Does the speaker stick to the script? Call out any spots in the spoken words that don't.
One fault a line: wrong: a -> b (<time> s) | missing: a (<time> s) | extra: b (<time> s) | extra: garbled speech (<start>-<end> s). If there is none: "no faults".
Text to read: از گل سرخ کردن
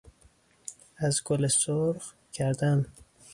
no faults